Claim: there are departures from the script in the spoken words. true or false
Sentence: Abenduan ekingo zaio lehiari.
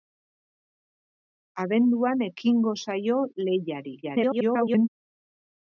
true